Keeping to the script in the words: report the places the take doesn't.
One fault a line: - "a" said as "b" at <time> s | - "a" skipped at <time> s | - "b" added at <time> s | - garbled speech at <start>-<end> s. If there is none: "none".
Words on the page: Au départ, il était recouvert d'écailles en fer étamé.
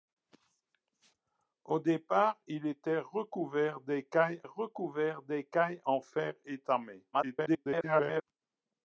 - "recouvert d'écailles" added at 4.4 s
- garbled speech at 7.1-8.2 s